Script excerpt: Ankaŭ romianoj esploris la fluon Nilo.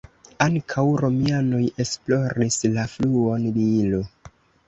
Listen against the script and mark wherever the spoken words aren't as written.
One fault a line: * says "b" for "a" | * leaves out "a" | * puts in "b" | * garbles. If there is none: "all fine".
all fine